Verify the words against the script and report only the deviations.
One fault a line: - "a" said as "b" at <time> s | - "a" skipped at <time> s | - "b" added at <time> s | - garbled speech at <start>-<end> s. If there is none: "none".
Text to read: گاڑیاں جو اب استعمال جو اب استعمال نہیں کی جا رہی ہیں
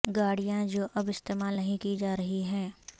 - "جو اب استعمال" skipped at 1.5 s